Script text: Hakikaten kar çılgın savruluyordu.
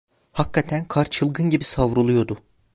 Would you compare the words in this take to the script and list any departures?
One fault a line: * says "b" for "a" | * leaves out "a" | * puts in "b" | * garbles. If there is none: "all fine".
* puts in "gibi"